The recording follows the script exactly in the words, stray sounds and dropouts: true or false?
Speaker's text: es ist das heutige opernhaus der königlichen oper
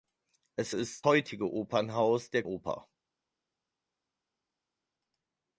false